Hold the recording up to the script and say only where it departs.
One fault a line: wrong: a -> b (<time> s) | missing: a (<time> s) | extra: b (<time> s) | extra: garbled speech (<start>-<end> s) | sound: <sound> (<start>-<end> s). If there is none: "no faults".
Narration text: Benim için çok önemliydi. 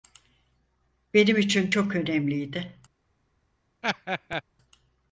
sound: laugh (3.8-4.4 s)